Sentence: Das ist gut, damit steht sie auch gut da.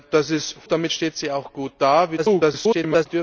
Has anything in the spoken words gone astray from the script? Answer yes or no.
yes